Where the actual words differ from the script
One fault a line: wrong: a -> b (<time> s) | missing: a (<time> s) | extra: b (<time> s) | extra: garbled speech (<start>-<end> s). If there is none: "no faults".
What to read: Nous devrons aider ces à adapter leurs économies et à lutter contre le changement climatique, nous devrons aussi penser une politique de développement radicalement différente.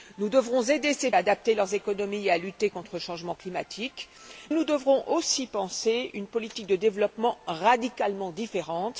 no faults